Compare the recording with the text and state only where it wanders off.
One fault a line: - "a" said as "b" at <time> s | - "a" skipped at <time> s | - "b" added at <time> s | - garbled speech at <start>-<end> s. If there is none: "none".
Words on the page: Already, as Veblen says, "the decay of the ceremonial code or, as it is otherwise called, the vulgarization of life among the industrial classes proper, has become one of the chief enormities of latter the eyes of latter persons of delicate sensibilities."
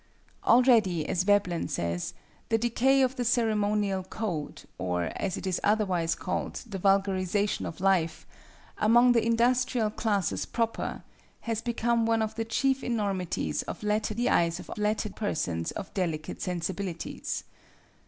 none